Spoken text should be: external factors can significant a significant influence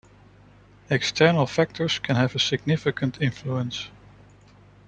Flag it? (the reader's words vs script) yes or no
yes